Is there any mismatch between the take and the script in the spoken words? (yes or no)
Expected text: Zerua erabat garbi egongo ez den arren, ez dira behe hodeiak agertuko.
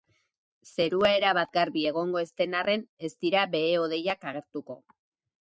no